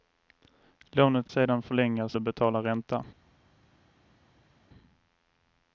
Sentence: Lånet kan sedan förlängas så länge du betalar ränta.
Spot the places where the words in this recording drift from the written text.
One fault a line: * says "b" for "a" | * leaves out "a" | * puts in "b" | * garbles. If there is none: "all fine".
* leaves out "kan"
* leaves out "så länge"